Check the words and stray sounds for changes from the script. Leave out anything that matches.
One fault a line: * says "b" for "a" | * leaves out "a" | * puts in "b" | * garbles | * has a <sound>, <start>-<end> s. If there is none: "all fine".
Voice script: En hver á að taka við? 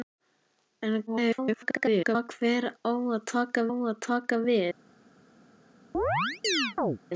* garbles
* puts in "að taka"
* has a chirp, 5.9-7.0 s